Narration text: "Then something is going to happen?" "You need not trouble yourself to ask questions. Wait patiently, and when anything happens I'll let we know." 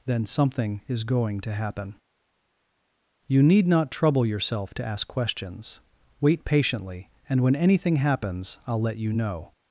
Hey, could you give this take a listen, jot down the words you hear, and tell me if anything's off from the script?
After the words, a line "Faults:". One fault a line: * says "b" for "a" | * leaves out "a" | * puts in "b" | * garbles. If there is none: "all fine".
"Then something is going to happen?" "You need not trouble yourself to ask questions. Wait patiently, and when anything happens I'll let you know."
Faults:
* says "you" for "we"